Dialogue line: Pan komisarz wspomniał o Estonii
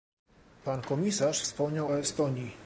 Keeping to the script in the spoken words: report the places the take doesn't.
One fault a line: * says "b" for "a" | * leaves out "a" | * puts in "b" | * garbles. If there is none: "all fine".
all fine